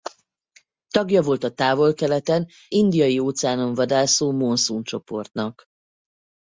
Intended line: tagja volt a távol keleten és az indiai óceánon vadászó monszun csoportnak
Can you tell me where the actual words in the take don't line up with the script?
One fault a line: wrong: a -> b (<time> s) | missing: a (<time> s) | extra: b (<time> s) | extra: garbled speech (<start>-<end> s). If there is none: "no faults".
missing: és az (2.5 s)